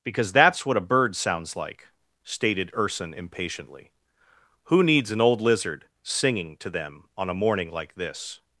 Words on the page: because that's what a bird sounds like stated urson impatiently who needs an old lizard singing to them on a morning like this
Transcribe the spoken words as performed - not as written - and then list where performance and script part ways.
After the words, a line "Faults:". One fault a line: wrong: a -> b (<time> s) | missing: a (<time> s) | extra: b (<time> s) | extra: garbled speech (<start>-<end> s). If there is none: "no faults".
because that's what a bird sounds like stated urson impatiently who needs an old lizard singing to them on a morning like this
Faults:
no faults